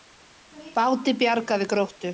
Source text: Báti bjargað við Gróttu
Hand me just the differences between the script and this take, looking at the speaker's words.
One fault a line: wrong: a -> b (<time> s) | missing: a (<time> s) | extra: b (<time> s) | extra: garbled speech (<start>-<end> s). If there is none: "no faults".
no faults